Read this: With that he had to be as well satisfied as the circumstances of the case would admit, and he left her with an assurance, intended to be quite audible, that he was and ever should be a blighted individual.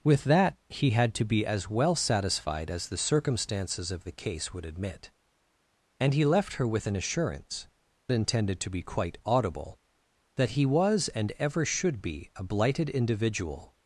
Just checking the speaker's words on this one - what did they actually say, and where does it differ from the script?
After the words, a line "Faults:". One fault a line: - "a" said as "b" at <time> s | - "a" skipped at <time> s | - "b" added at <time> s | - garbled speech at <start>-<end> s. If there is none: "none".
With that he had to be as well satisfied as the circumstances of the case would admit, and he left her with an assurance, intended to be quite audible, that he was and ever should be a blighted individual.
Faults:
none